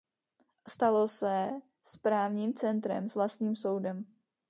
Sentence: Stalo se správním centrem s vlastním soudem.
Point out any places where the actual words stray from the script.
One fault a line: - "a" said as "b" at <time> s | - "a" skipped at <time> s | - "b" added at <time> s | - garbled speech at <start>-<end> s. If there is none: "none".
none